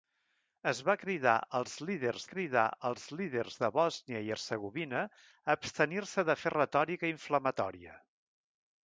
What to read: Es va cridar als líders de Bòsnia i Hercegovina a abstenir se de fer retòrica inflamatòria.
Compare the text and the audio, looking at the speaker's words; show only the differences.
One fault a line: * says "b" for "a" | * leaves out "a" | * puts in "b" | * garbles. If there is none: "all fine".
* puts in "cridar als líders"